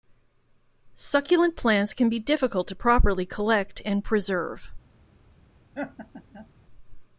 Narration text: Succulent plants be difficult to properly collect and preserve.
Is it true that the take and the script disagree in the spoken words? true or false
true